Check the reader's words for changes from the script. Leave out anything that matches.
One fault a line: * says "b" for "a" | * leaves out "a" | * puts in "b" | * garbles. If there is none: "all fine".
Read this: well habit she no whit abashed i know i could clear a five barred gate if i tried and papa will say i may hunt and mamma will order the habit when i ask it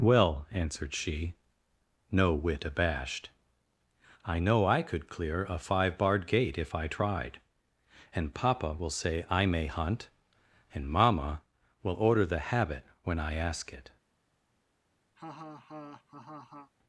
* says "answered" for "habit"